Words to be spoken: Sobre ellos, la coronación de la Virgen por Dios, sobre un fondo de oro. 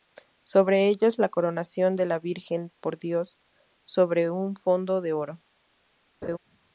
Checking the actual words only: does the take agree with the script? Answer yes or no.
yes